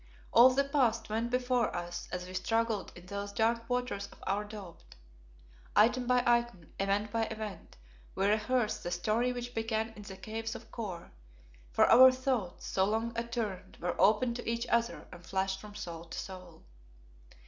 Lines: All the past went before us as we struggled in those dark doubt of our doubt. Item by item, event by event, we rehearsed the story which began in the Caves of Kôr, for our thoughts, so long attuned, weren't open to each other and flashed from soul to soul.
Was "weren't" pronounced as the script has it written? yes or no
no